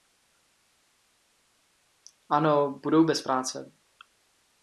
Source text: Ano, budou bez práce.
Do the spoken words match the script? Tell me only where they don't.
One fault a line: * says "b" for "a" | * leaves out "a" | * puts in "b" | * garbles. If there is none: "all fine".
all fine